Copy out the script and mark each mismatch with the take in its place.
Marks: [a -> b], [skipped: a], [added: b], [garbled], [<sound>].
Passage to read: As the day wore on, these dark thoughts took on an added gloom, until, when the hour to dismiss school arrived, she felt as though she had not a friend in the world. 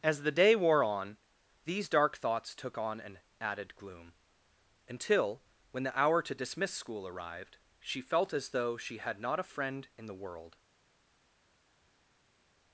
As the day wore on, these dark thoughts took on an added gloom, until, when the hour to dismiss school arrived, she felt as though she had not a friend in the world.